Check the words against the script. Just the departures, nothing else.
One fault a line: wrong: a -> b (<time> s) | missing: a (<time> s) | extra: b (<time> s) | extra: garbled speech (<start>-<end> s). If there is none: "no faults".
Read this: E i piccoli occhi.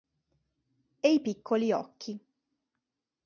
no faults